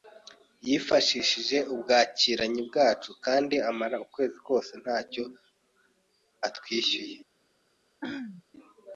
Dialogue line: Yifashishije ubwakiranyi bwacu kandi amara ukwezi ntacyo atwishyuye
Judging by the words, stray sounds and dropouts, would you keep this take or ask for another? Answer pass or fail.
fail